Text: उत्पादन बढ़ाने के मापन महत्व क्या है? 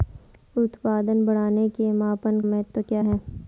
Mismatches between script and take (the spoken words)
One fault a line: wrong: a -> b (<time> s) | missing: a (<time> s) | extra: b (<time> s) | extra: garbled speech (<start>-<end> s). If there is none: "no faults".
no faults